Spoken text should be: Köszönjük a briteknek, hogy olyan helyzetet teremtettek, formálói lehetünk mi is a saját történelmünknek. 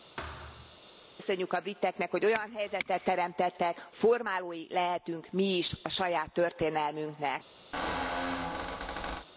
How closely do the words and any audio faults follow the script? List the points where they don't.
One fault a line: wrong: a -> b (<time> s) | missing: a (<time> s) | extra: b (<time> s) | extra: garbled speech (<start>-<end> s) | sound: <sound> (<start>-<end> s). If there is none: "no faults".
sound: thud (0.2-0.8 s)
sound: squeak (7.7-9.3 s)